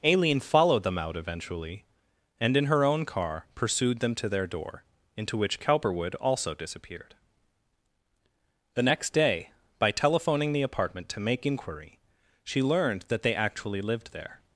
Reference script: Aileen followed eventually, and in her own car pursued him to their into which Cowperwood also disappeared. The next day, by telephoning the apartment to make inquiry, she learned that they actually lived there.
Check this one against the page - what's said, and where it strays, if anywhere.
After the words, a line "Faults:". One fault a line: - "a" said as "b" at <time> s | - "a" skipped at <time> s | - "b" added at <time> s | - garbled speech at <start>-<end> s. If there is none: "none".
Aileen followed them out eventually, and in her own car pursued them to their door, into which Cowperwood also disappeared. The next day, by telephoning the apartment to make inquiry, she learned that they actually lived there.
Faults:
- "them out" added at 0.8 s
- "him" said as "them" at 4.0 s
- "door" added at 4.5 s